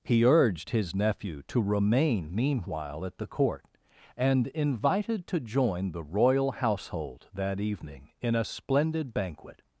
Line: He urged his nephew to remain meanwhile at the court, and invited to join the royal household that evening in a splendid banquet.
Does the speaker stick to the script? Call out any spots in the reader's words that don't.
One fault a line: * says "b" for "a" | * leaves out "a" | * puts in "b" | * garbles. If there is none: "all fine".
all fine